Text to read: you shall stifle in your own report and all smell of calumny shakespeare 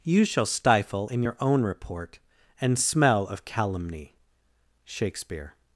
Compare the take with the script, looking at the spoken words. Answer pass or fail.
fail